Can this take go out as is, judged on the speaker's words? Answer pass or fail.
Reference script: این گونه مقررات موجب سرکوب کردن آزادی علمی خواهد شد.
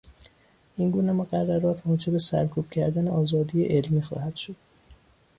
pass